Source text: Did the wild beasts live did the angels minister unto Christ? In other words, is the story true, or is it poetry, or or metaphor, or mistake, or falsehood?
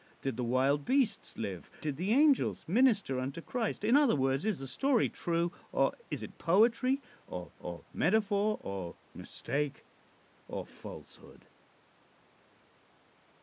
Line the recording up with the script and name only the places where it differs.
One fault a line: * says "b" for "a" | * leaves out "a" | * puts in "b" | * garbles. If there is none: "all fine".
all fine